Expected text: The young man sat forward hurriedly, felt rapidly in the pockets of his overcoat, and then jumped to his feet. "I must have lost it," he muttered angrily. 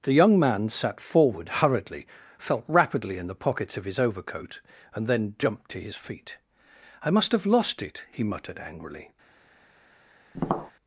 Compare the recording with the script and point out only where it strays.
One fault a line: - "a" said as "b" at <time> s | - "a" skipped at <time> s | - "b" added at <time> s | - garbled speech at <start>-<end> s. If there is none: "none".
none